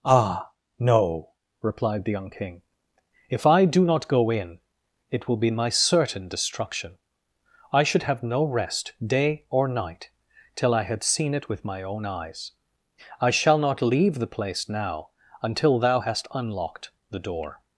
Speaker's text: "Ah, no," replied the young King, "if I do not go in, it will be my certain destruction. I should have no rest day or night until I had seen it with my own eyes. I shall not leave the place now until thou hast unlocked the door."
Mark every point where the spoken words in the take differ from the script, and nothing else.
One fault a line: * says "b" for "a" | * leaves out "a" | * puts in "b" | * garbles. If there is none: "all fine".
* says "till" for "until"